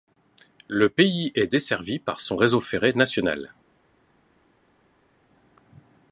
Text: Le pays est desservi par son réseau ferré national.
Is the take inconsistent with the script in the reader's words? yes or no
no